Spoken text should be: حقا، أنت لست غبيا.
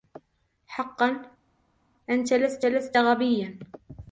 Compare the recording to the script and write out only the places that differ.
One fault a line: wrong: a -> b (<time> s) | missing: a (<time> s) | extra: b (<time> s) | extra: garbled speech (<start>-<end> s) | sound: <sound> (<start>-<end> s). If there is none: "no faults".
extra: لست (2.7 s)